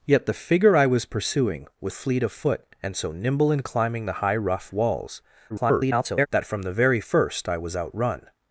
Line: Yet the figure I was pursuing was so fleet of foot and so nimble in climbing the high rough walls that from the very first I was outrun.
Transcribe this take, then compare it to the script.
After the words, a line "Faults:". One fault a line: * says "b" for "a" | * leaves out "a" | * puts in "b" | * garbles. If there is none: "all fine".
Yet the figure I was pursuing was fleet of foot and so nimble in climbing the high rough walls [garbled] that from the very first I was outrun.
Faults:
* leaves out "so"
* garbles